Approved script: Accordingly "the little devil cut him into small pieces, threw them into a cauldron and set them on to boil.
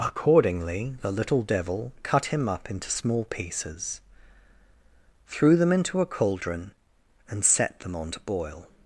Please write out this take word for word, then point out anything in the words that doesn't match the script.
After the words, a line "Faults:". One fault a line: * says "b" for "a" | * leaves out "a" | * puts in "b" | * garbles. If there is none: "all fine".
Accordingly "the little devil cut him up into small pieces, threw them into a cauldron and set them on to boil.
Faults:
* puts in "up"